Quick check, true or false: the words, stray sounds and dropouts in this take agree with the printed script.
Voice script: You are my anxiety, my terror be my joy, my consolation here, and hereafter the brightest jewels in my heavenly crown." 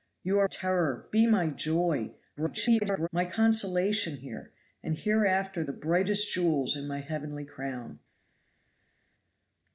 false